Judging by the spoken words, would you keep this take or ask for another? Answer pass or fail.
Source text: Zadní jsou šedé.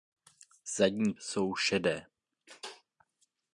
pass